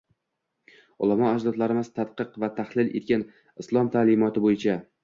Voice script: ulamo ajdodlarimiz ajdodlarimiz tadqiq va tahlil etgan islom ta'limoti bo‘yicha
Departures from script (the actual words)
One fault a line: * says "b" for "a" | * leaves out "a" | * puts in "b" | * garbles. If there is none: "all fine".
* leaves out "ajdodlarimiz"